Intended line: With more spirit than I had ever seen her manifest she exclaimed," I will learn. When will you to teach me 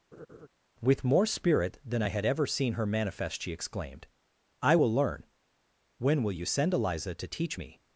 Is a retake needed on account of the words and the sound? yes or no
yes